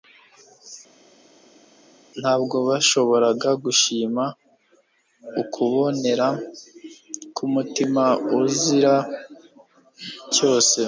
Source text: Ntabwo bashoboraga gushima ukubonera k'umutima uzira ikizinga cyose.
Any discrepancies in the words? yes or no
yes